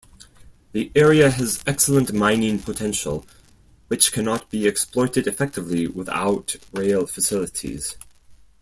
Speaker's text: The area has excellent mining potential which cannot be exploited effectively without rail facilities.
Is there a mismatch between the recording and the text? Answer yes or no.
no